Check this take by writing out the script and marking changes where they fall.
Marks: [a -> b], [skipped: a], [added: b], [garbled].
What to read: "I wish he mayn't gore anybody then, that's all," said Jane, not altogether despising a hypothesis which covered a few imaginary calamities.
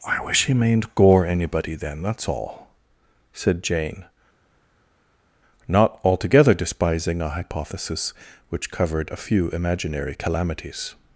"I wish he mayn't gore anybody then, that's all," said Jane, not altogether despising a hypothesis which covered a few imaginary calamities.